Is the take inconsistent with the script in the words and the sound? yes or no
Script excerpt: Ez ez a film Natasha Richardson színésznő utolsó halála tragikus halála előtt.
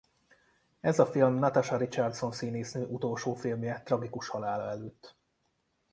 yes